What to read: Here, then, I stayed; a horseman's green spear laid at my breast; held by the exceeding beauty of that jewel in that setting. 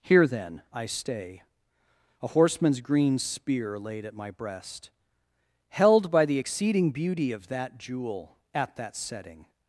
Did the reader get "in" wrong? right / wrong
wrong